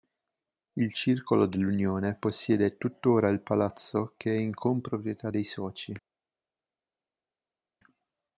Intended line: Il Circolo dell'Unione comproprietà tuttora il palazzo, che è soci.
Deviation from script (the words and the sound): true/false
true